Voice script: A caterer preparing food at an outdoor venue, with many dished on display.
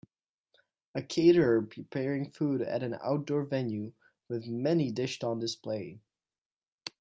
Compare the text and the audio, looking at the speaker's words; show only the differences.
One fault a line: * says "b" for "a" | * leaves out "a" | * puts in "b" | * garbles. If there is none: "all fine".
all fine